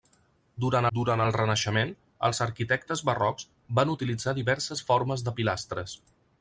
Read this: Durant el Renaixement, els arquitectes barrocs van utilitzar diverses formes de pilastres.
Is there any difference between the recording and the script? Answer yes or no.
yes